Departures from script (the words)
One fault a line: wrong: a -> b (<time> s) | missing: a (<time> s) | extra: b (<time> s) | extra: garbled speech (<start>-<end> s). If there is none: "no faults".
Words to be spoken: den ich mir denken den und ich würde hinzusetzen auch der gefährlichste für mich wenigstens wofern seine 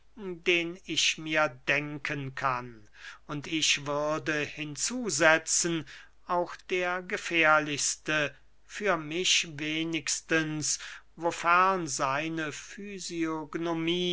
wrong: den -> kann (2.3 s)